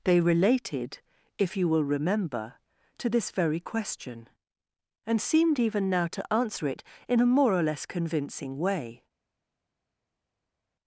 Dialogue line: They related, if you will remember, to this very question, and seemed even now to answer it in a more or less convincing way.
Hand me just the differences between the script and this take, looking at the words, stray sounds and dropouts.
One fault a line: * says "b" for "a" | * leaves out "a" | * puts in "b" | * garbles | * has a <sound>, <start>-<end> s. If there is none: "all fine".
all fine